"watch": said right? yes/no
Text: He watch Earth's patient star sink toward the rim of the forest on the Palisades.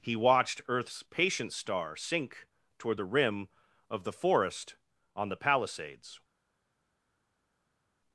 no